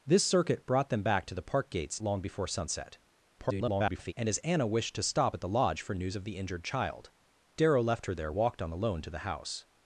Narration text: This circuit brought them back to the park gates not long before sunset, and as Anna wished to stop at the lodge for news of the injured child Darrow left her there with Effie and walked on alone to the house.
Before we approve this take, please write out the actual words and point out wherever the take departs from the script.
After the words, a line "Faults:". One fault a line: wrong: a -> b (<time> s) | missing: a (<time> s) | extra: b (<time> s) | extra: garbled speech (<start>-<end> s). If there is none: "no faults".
This circuit brought them back to the park gates long before sunset, [garbled] and as Anna wished to stop at the lodge for news of the injured child Darrow left her there walked on alone to the house.
Faults:
missing: not (2.0 s)
extra: garbled speech (3.4-4.1 s)
missing: with Effie and (8.3 s)